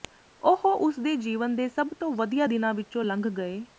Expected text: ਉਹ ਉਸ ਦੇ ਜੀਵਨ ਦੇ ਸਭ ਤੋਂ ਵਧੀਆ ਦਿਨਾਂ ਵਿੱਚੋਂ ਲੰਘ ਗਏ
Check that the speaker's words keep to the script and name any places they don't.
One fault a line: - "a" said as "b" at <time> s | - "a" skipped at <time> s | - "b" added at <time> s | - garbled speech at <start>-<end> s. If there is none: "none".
none